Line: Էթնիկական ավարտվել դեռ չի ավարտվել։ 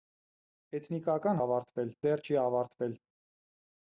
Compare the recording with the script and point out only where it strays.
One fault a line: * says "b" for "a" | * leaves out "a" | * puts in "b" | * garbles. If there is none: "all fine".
all fine